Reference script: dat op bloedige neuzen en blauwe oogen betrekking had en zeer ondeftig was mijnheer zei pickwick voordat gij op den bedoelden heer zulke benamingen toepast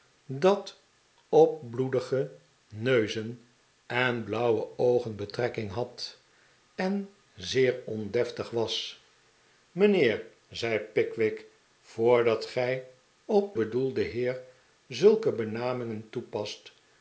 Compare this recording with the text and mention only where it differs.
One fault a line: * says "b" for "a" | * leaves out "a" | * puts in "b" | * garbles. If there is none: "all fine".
* leaves out "den"